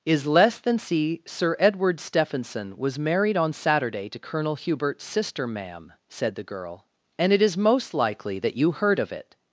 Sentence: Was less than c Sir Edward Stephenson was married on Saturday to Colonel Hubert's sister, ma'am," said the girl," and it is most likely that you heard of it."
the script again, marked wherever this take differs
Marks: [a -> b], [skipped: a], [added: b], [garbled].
[Was -> Is] less than c Sir Edward Stephenson was married on Saturday to Colonel Hubert's sister, ma'am," said the girl," and it is most likely that you heard of it."